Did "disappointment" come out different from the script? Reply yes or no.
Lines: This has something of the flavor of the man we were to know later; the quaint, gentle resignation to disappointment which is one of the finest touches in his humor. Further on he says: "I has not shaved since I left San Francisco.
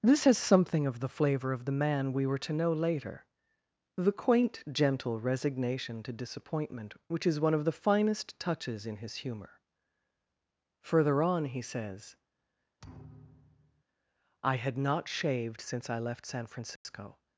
no